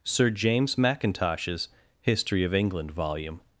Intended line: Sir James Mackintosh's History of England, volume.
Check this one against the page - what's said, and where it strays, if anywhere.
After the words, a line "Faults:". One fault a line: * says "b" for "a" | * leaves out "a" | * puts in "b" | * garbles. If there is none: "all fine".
Sir James Mackintosh's History of England, volume.
Faults:
all fine